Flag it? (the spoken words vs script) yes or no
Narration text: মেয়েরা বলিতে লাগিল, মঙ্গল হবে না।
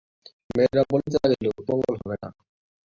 no